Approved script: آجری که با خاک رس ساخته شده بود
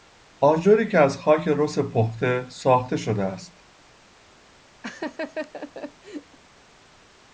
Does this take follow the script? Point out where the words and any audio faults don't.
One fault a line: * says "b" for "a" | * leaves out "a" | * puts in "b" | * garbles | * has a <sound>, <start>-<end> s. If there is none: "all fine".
* says "از" for "با"
* puts in "پخته"
* says "است" for "بود"
* has a laugh, 4.8-6.4 s